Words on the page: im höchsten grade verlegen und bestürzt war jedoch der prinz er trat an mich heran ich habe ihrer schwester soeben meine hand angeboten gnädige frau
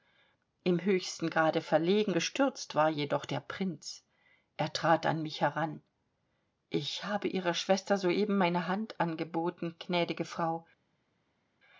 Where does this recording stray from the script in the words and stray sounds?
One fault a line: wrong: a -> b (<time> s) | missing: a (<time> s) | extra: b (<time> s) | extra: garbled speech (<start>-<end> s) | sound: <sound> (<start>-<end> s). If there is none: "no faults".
missing: und (2.1 s)